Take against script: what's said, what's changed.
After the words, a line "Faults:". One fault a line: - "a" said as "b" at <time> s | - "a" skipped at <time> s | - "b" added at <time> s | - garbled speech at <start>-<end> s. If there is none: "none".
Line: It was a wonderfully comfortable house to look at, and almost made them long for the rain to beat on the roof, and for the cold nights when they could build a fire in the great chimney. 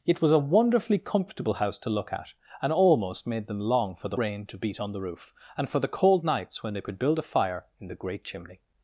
It was a wonderfully comfortable house to look at, and almost made them long for the rain to beat on the roof, and for the cold nights when they could build a fire in the great chimney.
Faults:
none